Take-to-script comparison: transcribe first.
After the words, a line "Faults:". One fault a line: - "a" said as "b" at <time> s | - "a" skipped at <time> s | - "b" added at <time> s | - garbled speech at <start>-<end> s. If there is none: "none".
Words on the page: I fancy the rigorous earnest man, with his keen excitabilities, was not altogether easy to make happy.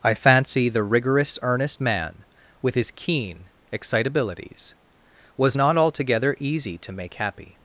I fancy the rigorous earnest man, with his keen excitabilities, was not altogether easy to make happy.
Faults:
none